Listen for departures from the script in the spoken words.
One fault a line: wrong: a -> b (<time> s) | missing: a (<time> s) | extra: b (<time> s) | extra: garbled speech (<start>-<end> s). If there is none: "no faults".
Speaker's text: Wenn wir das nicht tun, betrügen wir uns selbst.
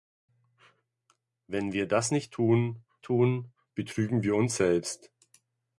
extra: tun (3.0 s)